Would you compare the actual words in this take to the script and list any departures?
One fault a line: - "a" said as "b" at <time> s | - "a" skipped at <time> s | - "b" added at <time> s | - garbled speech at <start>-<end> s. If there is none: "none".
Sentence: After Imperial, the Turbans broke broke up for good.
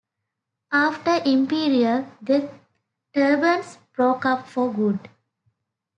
- "broke" skipped at 4.2 s